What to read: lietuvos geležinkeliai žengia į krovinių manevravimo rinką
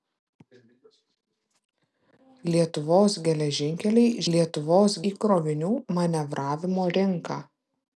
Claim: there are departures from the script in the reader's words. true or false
true